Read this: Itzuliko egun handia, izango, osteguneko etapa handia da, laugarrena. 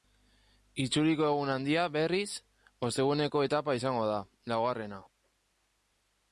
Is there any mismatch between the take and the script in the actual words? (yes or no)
yes